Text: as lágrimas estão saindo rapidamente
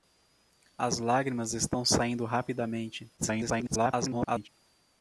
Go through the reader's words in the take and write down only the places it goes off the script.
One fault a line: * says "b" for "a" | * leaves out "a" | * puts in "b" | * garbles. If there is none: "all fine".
* garbles